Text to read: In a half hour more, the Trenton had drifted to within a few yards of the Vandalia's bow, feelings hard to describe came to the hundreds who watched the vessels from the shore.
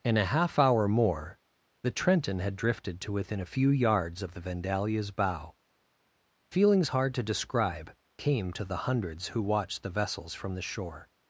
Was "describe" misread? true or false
false